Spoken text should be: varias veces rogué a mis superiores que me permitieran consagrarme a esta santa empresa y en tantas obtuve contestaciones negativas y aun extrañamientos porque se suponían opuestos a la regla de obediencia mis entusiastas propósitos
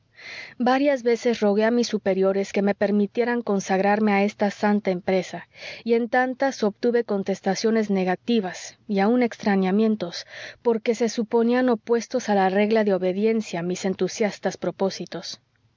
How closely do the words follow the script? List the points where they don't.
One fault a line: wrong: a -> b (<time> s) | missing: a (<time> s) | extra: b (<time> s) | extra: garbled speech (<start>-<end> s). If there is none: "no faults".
no faults